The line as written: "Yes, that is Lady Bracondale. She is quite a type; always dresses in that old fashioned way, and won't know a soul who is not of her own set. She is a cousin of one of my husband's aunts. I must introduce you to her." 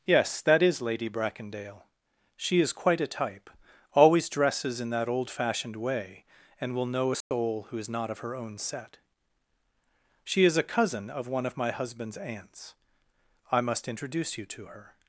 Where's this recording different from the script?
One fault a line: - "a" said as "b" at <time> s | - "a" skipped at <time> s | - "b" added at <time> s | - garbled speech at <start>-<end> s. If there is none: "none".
- "won't" said as "will" at 6.8 s